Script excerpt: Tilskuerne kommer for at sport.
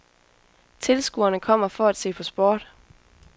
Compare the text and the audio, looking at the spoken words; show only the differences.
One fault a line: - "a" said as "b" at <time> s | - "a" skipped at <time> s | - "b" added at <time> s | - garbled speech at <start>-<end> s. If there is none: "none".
- "se på" added at 2.0 s